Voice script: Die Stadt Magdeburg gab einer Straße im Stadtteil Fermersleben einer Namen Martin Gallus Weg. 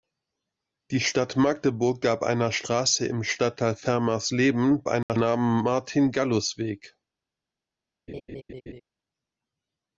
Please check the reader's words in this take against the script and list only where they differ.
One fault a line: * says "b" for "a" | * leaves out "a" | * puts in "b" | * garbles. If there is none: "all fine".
all fine